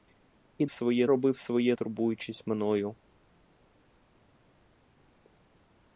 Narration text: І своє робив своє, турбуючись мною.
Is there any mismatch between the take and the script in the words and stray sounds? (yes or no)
no